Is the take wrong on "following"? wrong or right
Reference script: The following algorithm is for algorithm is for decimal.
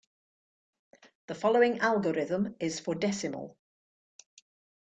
right